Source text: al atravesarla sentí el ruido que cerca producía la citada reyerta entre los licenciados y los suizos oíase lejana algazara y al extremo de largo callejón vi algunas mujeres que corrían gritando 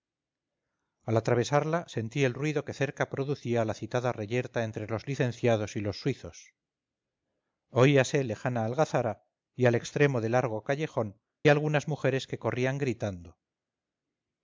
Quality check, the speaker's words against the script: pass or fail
fail